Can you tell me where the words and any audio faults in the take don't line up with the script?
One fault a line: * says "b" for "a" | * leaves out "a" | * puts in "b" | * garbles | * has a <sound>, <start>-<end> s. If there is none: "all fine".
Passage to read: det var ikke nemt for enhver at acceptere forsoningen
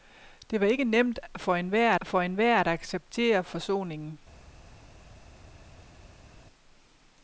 * puts in "for enhver"